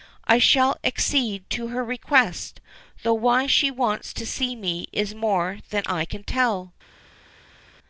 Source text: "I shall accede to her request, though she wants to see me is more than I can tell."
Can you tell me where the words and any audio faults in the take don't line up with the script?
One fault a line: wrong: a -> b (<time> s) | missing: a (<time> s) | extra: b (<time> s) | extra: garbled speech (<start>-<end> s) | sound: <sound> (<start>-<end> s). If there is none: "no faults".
extra: why (3.1 s)